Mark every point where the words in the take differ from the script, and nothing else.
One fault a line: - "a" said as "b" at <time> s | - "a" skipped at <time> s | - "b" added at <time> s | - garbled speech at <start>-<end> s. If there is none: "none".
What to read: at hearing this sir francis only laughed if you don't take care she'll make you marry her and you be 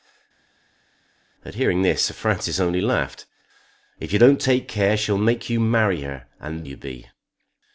none